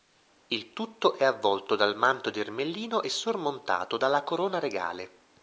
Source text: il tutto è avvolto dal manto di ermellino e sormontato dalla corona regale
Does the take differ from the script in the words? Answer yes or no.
no